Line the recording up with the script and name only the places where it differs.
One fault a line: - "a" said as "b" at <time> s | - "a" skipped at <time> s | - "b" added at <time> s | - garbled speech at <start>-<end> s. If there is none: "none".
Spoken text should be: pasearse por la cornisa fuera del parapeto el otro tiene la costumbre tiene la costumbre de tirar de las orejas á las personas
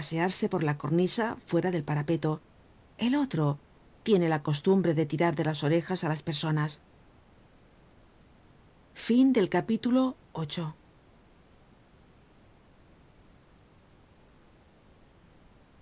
- "tiene la costumbre" skipped at 4.9 s